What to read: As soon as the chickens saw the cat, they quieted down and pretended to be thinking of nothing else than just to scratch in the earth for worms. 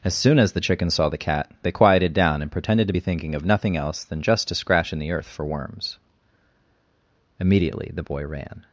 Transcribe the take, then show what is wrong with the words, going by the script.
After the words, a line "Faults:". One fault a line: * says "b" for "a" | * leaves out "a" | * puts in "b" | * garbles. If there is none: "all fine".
As soon as the chickens saw the cat, they quieted down and pretended to be thinking of nothing else than just to scratch in the earth for worms. Immediately the boy ran
Faults:
* puts in "Immediately the boy ran"